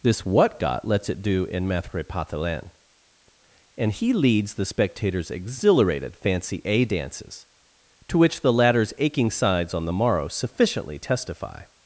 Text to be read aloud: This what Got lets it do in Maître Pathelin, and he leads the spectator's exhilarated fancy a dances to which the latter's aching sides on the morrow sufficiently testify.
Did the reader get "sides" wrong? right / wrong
right